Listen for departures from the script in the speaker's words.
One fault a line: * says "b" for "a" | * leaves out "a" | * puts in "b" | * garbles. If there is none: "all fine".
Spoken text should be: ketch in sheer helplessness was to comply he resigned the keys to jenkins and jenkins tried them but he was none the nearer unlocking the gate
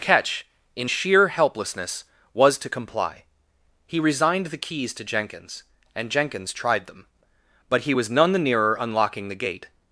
all fine